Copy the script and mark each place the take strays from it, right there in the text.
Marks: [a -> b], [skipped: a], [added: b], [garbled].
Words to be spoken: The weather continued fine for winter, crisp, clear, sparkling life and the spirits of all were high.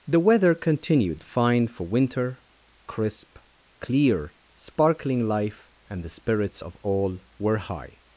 The weather continued fine for winter, crisp, clear, sparkling life and the spirits of all were high.